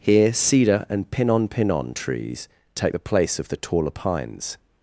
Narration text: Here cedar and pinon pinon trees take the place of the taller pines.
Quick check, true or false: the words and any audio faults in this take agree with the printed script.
true